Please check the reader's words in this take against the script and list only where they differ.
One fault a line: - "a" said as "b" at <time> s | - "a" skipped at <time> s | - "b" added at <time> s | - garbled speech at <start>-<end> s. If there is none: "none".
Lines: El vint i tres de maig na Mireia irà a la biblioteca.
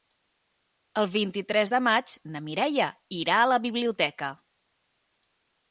none